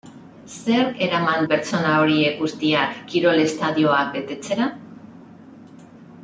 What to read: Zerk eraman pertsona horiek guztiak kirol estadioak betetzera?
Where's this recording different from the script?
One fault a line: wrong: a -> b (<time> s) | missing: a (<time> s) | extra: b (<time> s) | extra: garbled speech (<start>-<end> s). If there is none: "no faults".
no faults